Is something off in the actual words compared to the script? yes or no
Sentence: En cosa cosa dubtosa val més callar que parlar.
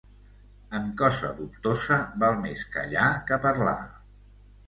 yes